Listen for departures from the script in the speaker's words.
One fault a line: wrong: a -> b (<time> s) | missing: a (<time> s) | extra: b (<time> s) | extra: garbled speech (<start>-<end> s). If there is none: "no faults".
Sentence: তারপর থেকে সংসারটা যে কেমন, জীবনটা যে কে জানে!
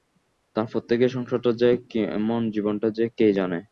no faults